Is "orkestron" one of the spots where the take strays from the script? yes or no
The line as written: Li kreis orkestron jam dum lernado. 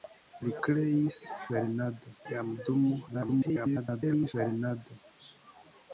yes